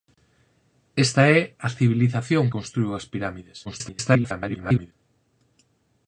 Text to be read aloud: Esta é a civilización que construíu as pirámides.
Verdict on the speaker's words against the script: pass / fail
fail